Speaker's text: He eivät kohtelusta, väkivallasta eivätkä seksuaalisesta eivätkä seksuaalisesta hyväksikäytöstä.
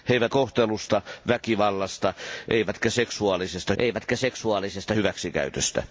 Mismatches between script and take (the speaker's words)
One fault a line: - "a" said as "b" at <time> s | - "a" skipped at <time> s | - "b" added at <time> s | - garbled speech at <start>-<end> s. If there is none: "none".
none